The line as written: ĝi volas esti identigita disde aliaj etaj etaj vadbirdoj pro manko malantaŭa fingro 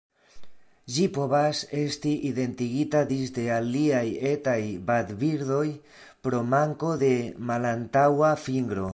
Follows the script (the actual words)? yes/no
no